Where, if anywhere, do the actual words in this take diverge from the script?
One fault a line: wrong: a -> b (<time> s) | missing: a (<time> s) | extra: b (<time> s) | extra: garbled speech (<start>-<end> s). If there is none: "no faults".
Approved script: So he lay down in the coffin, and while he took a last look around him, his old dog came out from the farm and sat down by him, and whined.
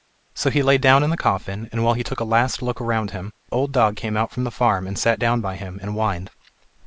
missing: his (3.3 s)